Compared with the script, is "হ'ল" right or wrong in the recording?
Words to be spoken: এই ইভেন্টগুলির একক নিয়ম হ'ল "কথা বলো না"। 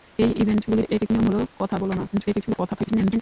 right